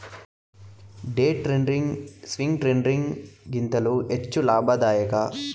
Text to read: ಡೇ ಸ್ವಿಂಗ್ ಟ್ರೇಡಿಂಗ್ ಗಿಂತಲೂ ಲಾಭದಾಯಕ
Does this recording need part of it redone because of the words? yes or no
yes